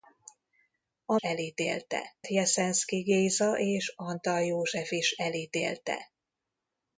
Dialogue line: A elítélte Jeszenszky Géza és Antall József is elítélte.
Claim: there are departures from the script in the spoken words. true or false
false